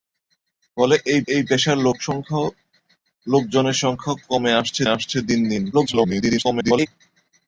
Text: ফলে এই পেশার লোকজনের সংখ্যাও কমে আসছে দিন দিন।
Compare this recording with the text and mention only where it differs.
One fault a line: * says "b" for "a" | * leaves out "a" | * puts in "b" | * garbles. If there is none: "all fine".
* puts in "এই"
* puts in "আসছে"
* garbles